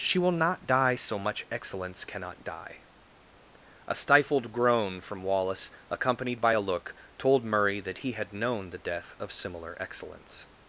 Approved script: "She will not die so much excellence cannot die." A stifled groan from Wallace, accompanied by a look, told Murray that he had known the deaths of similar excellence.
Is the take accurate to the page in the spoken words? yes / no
no